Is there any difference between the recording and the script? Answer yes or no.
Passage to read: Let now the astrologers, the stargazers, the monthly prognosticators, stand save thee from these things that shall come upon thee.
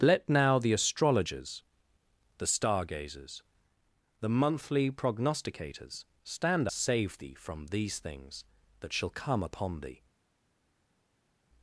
no